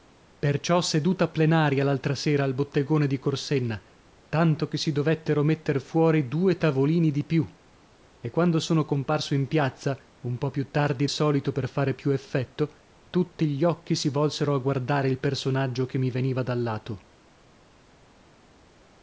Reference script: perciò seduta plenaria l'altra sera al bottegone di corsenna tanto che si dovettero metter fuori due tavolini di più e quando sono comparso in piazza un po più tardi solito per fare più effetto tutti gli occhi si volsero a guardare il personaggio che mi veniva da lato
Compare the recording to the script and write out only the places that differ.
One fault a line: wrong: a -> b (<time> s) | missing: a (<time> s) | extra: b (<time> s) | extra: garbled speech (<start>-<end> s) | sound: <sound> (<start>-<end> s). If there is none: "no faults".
no faults